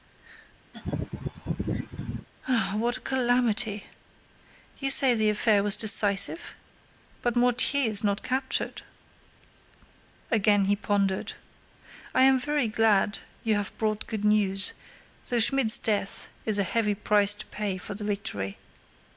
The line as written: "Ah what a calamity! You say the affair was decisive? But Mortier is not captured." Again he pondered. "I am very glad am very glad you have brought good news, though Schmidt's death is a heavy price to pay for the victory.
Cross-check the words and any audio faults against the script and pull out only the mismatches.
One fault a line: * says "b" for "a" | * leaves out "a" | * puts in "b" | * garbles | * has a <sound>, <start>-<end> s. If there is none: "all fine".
* has a laugh, 0.7-2.3 s
* leaves out "am very glad"